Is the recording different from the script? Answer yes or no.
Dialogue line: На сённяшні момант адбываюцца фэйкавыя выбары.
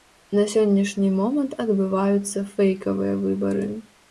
no